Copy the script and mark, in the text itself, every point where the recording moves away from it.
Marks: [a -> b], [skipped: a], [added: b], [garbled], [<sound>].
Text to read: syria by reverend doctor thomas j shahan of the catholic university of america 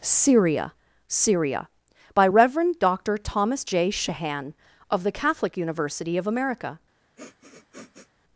syria [added: syria] by reverend doctor thomas j shahan of the catholic university of america [sniff]